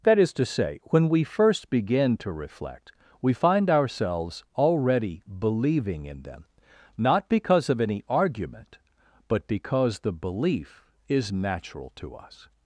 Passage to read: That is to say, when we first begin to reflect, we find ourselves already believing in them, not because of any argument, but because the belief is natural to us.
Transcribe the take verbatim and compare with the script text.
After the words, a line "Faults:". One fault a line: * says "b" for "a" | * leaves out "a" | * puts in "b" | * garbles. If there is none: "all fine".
That is to say, when we first begin to reflect, we find ourselves already believing in them, not because of any argument, but because the belief is natural to us.
Faults:
all fine